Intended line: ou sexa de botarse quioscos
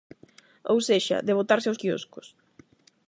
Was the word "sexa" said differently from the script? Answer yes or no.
no